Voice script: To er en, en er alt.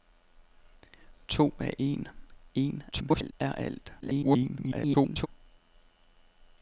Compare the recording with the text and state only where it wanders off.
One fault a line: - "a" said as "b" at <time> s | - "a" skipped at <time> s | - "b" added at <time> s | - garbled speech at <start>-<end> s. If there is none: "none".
- garbled speech at 2.9-3.3 s
- garbled speech at 4.0-5.3 s